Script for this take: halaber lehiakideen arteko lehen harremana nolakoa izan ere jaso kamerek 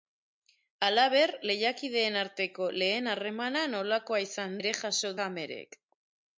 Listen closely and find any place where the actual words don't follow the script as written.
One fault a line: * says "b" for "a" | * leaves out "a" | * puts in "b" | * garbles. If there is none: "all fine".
all fine